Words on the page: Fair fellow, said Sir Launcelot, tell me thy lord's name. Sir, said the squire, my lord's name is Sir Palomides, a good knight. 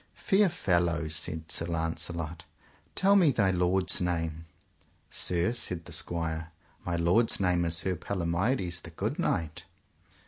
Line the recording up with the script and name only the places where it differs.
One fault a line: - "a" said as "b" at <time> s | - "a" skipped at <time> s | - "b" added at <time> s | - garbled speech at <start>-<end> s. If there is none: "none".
- "a" said as "the" at 8.8 s